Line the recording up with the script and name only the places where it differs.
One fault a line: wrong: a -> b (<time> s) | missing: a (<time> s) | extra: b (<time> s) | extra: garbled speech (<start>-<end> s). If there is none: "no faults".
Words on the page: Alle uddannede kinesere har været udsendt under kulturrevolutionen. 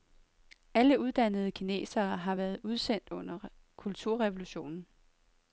no faults